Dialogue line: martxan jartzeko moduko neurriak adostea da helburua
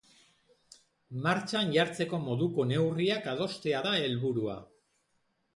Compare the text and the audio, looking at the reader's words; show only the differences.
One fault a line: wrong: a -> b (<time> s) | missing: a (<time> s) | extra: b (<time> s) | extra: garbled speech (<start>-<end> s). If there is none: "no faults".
no faults